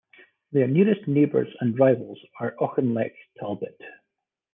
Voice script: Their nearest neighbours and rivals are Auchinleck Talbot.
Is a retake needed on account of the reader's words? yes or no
no